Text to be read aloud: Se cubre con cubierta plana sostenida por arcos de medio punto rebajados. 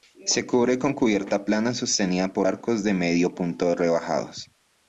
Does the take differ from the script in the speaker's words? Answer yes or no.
no